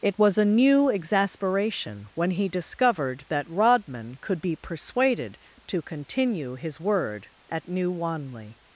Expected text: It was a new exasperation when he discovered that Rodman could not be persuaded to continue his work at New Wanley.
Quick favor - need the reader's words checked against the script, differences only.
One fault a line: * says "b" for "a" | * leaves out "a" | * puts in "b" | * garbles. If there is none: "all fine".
* leaves out "not"
* says "word" for "work"